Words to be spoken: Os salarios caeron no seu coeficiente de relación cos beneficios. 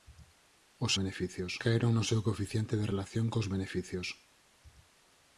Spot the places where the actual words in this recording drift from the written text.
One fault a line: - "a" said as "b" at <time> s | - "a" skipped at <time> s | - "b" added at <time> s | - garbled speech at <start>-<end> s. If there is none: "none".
- "salarios" said as "beneficios" at 1.0 s